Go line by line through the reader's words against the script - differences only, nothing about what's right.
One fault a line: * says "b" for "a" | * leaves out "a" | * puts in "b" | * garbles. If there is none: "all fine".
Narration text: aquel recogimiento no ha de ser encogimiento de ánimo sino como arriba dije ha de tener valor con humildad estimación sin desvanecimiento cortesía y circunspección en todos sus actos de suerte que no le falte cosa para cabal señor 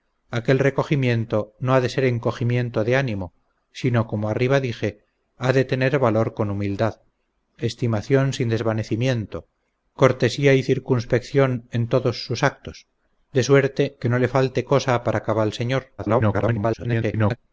* garbles